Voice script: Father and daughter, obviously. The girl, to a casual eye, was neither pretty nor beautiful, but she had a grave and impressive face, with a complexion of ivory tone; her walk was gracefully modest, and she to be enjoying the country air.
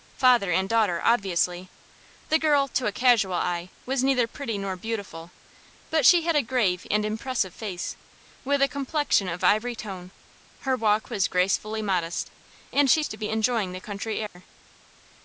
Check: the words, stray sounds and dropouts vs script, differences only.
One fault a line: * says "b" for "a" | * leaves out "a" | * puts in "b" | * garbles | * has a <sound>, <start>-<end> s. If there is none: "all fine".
* has a dropout, 14.3-14.4 s